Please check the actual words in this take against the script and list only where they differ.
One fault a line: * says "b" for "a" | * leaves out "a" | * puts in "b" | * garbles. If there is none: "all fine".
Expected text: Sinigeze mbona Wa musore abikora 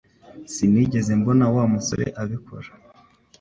all fine